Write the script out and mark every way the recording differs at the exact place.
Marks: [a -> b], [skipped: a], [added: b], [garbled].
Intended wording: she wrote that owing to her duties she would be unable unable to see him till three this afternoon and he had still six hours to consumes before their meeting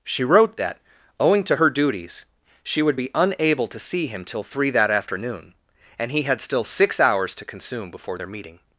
she wrote that owing to her duties she would be unable [skipped: unable] to see him till three [this -> that] afternoon and he had still six hours to [consumes -> consume] before their meeting